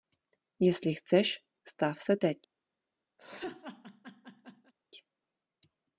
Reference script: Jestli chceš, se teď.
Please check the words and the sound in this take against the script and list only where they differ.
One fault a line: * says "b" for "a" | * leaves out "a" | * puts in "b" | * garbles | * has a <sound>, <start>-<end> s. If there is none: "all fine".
* puts in "stav"
* has a laugh, 3.2-4.7 s